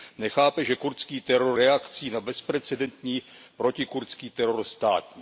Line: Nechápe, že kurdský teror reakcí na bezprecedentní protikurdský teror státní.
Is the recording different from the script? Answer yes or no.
no